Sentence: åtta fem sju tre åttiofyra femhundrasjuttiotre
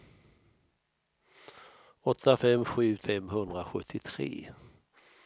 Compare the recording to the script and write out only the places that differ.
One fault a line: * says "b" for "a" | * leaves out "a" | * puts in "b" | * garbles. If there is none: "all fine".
* leaves out "tre åttiofyra"